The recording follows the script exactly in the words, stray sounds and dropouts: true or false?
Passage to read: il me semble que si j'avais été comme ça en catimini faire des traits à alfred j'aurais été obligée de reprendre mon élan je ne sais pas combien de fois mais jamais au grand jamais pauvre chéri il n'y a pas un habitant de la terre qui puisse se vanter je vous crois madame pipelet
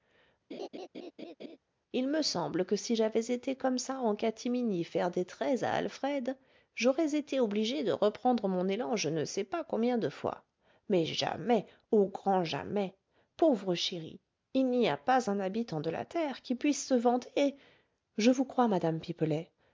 false